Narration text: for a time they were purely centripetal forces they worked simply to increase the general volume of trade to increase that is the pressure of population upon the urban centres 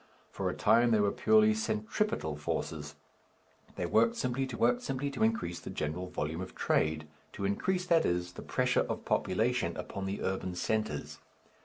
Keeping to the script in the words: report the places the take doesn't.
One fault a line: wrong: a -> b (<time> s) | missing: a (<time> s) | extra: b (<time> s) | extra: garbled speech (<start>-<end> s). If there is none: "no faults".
extra: worked simply to (4.5 s)